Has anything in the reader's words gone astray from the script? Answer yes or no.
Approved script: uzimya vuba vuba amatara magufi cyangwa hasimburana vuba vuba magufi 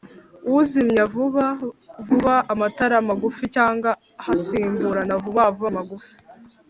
no